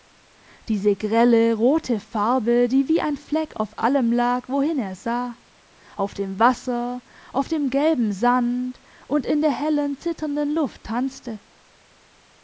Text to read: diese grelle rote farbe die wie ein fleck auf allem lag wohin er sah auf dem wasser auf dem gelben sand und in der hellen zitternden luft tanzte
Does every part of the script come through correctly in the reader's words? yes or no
yes